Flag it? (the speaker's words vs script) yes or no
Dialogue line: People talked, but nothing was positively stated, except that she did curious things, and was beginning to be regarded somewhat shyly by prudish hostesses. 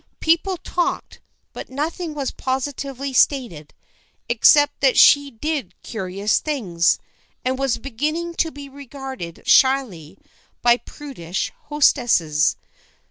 yes